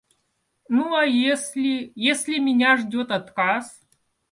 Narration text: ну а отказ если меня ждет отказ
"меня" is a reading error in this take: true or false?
false